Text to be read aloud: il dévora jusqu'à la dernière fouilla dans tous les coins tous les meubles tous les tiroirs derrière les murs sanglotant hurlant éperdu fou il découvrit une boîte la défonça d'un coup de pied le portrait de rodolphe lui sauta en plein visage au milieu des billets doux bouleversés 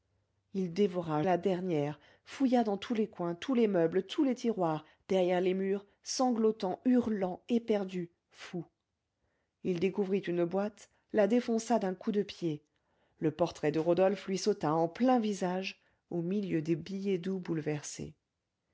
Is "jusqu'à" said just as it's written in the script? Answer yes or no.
no